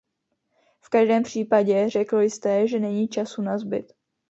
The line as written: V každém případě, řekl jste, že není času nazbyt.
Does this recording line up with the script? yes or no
yes